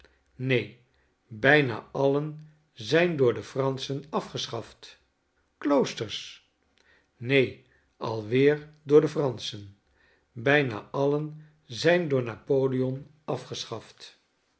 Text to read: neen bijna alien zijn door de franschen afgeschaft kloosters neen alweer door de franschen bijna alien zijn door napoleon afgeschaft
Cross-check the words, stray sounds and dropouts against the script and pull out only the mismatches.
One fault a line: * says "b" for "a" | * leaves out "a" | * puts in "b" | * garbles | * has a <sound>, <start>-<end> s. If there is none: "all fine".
all fine